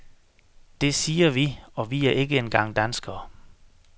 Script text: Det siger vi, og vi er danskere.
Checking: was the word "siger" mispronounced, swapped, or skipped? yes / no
no